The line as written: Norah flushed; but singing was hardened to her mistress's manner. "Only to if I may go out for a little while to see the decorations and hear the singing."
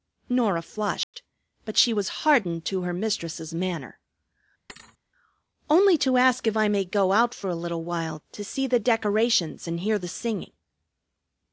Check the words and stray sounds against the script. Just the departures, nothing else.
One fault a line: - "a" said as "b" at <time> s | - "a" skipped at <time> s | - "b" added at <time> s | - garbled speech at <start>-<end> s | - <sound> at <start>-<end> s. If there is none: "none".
- dropout at 1.0-1.1 s
- "singing" said as "she" at 1.8 s
- thud at 4.7-5.0 s
- "ask" added at 6.2 s